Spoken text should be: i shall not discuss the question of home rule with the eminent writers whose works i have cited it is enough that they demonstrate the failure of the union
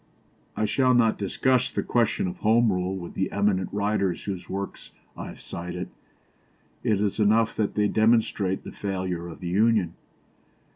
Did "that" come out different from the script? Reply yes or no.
no